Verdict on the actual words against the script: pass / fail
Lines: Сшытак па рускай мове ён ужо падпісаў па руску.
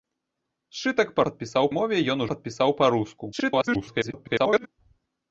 fail